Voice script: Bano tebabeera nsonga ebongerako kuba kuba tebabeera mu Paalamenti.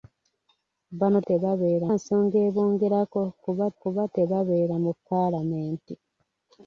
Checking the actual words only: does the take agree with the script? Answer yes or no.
yes